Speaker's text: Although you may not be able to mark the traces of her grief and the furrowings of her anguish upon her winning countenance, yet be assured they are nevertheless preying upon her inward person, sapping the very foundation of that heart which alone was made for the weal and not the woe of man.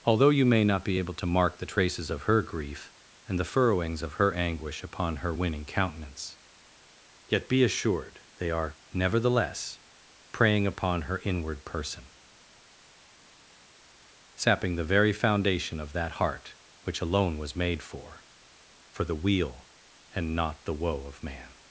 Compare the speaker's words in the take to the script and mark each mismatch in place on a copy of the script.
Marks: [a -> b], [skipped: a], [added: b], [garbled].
Although you may not be able to mark the traces of her grief and the furrowings of her anguish upon her winning countenance, yet be assured they are nevertheless preying upon her inward person, sapping the very foundation of that heart which alone was made for [added: for] the weal and not the woe of man.